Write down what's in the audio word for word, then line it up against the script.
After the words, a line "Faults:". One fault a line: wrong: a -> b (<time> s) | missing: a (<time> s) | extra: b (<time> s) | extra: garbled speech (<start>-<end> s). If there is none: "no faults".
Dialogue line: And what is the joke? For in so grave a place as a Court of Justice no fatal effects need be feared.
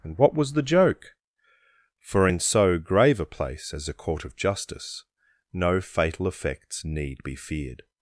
And what was the joke? For in so grave a place as a Court of Justice no fatal effects need be feared.
Faults:
wrong: is -> was (0.3 s)